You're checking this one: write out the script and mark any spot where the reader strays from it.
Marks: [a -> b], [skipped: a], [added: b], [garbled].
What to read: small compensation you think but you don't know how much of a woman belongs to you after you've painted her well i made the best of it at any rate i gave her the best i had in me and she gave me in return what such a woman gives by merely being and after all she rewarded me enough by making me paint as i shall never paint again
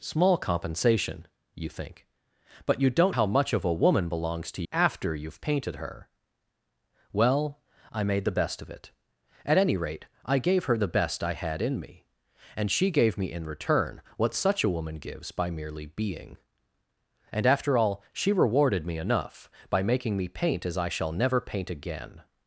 small compensation you think but you don't [skipped: know] how much of a woman belongs to [skipped: you] after you've painted her well i made the best of it at any rate i gave her the best i had in me and she gave me in return what such a woman gives by merely being and after all she rewarded me enough by making me paint as i shall never paint again